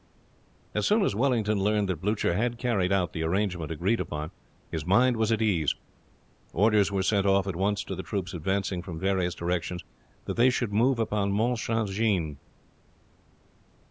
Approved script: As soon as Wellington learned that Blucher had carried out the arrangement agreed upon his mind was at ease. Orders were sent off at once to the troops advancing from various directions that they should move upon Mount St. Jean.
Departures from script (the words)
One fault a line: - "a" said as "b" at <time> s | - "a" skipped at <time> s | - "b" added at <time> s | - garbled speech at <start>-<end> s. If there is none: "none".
none